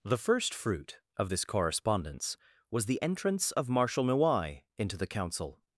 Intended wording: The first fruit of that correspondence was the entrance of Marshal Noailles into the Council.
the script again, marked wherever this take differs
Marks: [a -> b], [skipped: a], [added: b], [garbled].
The first fruit of [that -> this] correspondence was the entrance of Marshal Noailles into the Council.